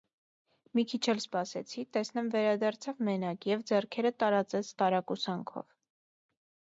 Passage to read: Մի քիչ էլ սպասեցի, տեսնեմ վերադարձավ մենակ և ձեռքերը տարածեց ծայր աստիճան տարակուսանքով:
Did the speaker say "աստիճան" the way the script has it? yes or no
no